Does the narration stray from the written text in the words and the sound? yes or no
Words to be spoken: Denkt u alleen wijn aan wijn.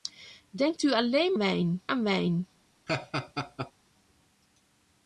yes